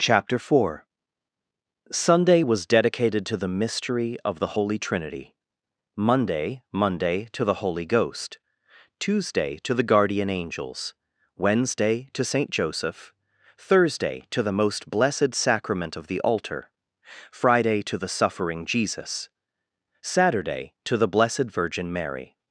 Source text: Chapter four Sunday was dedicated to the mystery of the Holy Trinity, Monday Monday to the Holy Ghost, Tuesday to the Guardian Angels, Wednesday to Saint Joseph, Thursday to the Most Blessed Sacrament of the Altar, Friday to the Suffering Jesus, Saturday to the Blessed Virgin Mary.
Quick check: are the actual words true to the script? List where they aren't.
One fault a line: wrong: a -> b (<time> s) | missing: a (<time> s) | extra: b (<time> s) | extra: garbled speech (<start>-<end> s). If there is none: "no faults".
no faults